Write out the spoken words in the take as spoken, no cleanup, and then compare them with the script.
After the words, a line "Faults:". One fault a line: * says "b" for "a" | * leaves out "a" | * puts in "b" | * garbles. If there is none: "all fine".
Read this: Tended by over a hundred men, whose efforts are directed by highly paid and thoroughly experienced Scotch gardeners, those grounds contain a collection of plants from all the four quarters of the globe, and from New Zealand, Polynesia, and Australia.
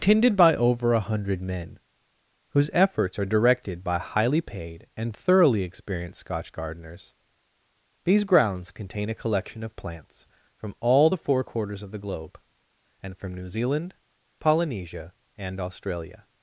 Tended by over a hundred men, whose efforts are directed by highly paid and thoroughly experienced Scotch gardeners, these grounds contain a collection of plants from all the four quarters of the globe, and from New Zealand, Polynesia, and Australia.
Faults:
* says "these" for "those"